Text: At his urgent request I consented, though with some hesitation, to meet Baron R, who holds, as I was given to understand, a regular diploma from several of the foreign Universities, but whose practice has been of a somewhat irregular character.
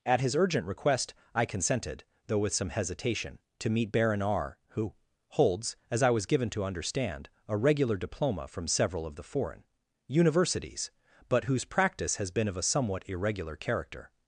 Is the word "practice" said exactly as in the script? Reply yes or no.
yes